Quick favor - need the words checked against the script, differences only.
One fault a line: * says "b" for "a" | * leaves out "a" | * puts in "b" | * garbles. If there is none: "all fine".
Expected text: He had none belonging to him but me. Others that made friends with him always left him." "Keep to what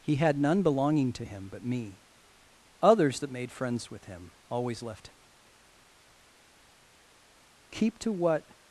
all fine